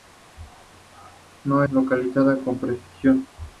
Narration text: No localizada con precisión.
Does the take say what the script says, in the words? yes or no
yes